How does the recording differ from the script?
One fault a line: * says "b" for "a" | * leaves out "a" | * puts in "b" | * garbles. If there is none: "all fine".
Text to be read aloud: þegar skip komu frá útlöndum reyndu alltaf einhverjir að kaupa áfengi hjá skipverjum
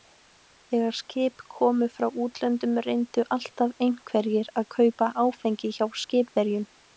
all fine